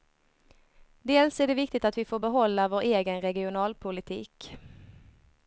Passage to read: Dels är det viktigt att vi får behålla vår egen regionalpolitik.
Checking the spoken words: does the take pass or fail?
pass